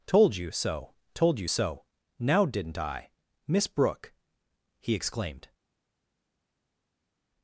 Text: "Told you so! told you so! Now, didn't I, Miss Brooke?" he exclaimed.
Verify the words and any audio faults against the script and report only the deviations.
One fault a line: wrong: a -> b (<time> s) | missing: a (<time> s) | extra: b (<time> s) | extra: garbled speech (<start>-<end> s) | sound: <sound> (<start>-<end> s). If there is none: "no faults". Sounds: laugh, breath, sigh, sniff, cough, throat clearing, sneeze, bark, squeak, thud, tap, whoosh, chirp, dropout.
no faults